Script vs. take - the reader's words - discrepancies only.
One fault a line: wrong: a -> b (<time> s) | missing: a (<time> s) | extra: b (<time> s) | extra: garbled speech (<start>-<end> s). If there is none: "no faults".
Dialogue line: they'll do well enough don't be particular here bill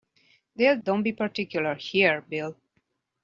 missing: do well enough (0.8 s)